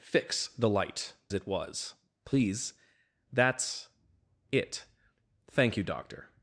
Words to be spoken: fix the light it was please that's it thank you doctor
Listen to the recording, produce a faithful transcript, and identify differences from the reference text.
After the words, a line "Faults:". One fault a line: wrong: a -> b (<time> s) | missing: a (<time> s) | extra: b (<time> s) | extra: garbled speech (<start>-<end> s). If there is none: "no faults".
fix the light it was please that's it thank you doctor
Faults:
no faults